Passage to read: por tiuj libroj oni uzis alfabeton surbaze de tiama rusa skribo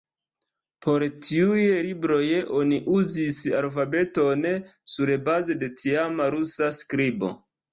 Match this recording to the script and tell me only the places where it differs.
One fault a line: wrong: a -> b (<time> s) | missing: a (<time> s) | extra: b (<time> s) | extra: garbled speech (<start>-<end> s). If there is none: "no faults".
no faults